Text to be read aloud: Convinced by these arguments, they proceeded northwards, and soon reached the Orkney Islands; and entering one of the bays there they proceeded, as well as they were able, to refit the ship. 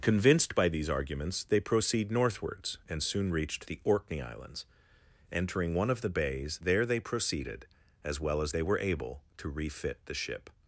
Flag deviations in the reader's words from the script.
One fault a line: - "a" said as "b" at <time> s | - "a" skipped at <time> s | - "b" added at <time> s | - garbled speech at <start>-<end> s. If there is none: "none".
- "proceeded" said as "proceed" at 1.6 s
- "and" skipped at 4.6 s